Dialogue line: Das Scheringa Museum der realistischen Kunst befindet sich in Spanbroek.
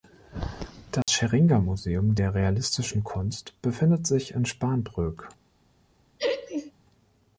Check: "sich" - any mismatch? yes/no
no